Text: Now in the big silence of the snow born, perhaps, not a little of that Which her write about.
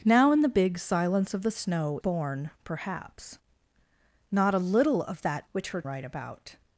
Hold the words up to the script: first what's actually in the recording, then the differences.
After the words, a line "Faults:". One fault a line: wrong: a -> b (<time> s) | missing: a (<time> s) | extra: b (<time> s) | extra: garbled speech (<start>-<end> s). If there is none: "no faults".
Now in the big silence of the snow born, perhaps, not a little of that Which her write about.
Faults:
no faults